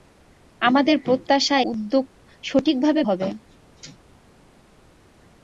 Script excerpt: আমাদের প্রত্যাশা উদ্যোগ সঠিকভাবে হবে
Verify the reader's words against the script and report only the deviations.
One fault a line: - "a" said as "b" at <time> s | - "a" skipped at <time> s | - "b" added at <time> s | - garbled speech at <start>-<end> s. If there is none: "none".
none